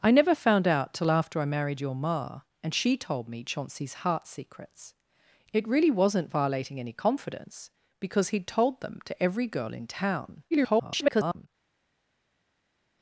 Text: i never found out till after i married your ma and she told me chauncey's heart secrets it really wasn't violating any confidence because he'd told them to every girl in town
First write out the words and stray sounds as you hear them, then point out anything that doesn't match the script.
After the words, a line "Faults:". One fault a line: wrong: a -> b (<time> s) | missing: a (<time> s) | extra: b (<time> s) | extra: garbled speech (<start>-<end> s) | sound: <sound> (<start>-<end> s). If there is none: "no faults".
i never found out till after i married your ma and she told me chauncey's heart secrets it really wasn't violating any confidence because he'd told them to every girl in town [garbled]
Faults:
extra: garbled speech (10.5-11.5 s)